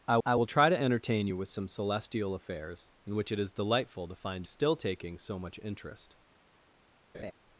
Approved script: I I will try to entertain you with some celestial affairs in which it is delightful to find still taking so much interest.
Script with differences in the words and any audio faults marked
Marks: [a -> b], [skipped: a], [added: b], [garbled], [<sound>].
I I will try to entertain you with some celestial affairs in which it is delightful to find still taking so much interest. [laugh]